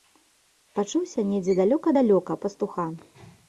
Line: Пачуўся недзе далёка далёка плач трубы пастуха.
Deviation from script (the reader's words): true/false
true